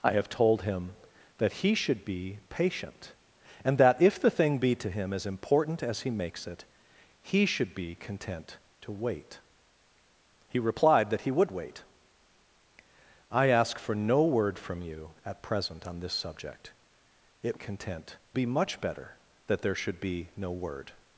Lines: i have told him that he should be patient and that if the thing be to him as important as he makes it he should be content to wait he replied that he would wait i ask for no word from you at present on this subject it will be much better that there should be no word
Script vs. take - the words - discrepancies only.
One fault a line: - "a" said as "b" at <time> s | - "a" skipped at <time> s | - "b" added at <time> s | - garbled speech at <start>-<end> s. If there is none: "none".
- "will" said as "content" at 17.5 s